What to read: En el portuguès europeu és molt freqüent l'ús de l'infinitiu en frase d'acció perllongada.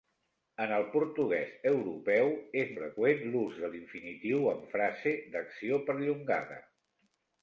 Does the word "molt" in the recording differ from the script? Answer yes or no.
yes